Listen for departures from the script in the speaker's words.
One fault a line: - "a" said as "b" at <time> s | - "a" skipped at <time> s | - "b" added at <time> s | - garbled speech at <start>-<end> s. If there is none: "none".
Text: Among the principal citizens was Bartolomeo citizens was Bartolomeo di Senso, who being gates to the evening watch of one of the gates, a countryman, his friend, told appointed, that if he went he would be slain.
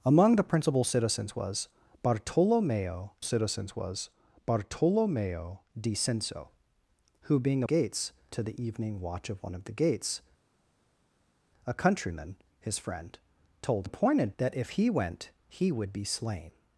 none